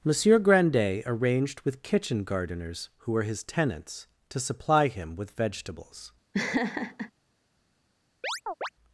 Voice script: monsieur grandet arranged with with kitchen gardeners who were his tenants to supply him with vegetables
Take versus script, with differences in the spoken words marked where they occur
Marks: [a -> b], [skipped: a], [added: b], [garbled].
monsieur grandet arranged with [skipped: with] kitchen gardeners who were his tenants to supply him with vegetables